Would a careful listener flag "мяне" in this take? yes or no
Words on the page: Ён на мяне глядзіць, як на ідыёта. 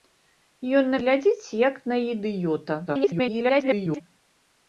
yes